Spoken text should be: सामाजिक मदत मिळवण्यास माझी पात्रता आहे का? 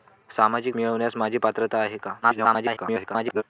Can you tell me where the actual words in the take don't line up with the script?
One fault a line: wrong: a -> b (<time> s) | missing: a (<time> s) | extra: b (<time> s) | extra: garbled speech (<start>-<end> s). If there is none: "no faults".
missing: मदत (0.8 s)
extra: garbled speech (2.2-3.4 s)